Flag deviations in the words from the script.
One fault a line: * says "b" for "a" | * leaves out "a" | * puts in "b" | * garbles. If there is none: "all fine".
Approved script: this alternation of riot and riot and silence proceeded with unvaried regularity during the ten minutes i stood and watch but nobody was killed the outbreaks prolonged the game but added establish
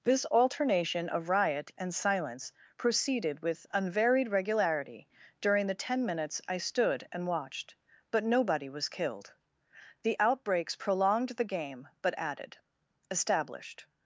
* leaves out "riot and"
* says "watched" for "watch"
* says "established" for "establish"